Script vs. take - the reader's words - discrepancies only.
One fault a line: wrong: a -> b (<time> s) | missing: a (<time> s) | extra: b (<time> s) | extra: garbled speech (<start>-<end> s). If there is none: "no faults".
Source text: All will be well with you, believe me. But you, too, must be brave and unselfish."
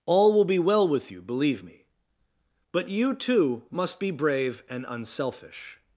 no faults